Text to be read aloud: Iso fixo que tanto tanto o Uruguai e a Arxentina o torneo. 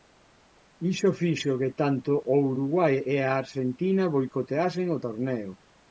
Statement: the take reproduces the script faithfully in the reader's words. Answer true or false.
false